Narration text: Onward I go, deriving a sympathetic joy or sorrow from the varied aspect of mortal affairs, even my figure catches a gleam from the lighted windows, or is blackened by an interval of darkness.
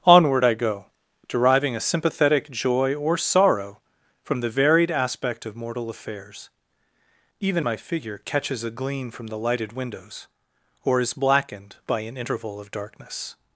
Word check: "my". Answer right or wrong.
right